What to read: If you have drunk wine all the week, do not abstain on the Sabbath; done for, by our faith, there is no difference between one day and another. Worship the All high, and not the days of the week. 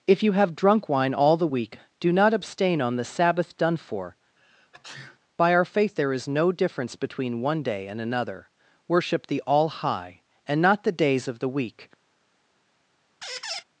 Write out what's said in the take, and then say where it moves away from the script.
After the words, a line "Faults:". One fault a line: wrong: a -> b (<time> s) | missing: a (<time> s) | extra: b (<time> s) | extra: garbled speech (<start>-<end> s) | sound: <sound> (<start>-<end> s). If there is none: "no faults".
If you have drunk wine all the week, do not abstain on the Sabbath; done for, by our faith, there is no difference between one day and another. Worship the All high, and not the days of the week.
Faults:
sound: sneeze (4.4-5.2 s)
sound: squeak (13.2-13.6 s)